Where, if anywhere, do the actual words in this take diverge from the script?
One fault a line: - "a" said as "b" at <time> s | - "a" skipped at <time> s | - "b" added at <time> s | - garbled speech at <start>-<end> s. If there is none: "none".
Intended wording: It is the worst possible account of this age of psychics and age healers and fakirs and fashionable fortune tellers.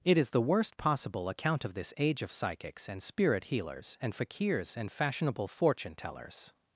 - "age" said as "spirit" at 3.0 s